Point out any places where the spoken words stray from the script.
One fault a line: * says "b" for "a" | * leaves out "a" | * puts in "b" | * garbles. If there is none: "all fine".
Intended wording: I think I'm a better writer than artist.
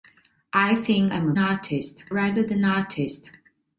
* says "artist" for "better"